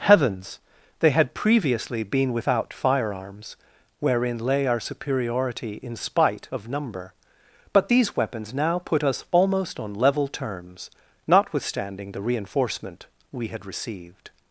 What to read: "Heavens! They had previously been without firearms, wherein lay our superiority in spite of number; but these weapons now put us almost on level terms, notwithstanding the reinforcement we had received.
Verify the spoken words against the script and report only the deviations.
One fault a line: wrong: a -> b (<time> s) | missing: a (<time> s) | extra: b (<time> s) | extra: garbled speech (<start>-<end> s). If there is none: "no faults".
no faults